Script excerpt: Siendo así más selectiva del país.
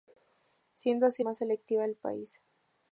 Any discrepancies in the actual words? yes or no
no